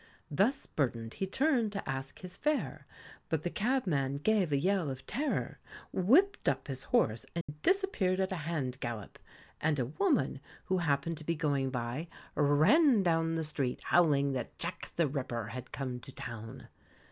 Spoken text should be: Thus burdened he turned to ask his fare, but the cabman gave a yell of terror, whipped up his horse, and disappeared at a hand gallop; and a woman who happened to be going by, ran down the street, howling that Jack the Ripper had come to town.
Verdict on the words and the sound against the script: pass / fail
fail